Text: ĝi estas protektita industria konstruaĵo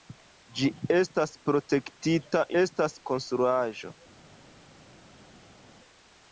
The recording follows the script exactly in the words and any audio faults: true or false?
false